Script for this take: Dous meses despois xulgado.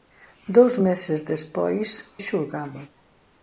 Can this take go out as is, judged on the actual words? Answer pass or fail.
pass